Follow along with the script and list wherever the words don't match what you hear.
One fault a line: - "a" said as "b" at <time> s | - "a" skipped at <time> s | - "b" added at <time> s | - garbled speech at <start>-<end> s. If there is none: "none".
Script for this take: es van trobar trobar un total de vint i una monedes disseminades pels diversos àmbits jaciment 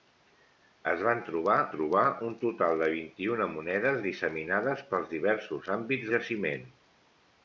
none